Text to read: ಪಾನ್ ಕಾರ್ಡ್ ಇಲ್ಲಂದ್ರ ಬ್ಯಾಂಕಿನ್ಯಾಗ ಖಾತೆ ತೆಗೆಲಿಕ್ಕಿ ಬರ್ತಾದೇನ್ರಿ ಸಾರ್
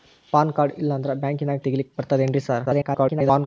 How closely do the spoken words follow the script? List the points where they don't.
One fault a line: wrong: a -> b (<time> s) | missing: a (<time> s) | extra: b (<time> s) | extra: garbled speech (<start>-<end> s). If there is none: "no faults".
missing: ಖಾತೆ (1.6 s)
extra: garbled speech (2.6-3.5 s)